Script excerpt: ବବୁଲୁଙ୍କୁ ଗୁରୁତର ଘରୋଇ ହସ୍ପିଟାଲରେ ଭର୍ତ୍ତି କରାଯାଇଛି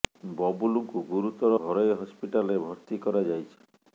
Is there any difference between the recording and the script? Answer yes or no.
no